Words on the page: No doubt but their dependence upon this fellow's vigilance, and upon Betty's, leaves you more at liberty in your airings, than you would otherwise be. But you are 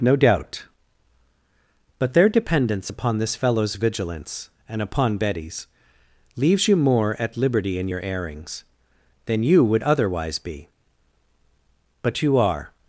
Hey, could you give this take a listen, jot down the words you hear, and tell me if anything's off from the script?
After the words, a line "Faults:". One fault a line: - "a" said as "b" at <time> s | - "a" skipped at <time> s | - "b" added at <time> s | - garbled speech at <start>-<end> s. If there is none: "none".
No doubt but their dependence upon this fellow's vigilance, and upon Betty's, leaves you more at liberty in your airings, than you would otherwise be. But you are
Faults:
none